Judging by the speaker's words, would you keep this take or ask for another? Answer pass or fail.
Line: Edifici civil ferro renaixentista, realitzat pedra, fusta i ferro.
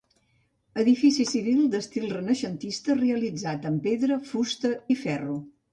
fail